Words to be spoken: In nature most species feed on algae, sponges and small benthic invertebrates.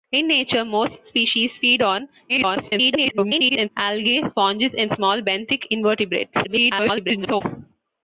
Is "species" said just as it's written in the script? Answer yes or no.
yes